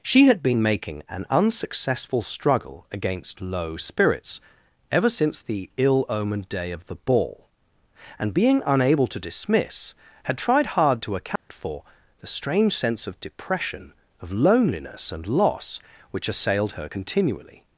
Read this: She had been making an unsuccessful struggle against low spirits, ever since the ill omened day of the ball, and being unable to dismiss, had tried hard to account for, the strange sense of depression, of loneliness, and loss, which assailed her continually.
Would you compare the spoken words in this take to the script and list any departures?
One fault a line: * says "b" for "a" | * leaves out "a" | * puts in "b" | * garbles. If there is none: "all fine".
all fine